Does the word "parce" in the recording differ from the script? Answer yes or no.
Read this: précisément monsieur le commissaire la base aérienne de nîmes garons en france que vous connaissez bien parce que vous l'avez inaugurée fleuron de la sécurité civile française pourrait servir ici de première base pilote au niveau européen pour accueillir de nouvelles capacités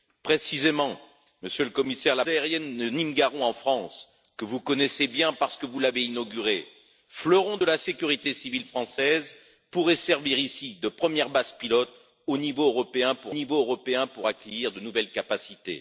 no